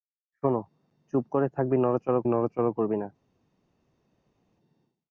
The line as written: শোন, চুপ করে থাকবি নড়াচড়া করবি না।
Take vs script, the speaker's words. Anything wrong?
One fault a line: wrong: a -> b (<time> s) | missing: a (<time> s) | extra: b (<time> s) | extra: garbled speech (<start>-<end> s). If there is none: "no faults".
extra: নড়াচড়া (2.3 s)